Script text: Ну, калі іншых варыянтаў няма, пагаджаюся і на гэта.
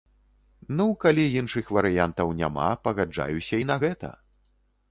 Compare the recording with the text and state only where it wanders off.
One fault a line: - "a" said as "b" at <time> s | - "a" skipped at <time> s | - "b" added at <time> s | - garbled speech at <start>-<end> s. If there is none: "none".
none